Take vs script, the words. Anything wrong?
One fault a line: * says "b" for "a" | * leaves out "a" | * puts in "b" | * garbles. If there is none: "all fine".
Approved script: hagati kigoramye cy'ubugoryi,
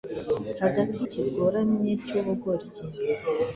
all fine